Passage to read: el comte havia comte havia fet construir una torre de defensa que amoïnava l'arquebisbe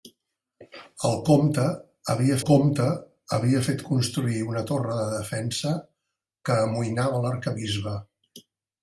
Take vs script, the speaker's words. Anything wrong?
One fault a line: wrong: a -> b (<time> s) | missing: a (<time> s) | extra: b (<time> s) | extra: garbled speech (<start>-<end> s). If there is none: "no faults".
no faults